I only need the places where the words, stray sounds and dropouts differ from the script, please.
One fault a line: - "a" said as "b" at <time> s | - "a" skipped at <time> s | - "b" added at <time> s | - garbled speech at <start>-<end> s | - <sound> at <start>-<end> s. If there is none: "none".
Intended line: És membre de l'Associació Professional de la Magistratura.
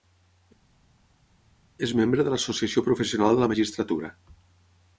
none